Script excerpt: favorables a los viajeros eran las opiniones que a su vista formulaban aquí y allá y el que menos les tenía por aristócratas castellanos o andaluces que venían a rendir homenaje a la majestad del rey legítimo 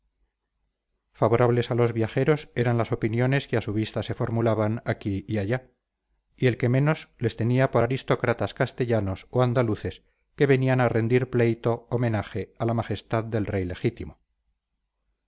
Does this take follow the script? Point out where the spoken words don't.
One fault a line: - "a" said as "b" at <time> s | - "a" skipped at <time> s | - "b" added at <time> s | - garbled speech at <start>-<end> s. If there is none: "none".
- "se" added at 4.0 s
- "pleito" added at 11.3 s